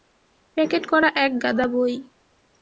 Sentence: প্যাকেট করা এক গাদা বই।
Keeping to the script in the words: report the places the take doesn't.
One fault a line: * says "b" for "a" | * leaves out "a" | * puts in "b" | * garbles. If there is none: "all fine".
all fine